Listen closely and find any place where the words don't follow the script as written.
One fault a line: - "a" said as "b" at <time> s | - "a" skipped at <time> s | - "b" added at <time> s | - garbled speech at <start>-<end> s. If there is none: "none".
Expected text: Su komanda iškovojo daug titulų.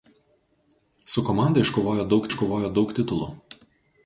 - "iškovojo daug" added at 2.3 s